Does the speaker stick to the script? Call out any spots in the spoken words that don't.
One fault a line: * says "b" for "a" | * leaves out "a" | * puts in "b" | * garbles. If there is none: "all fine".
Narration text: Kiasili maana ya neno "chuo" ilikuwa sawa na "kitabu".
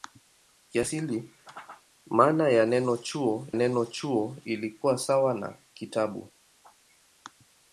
* puts in "neno chuo"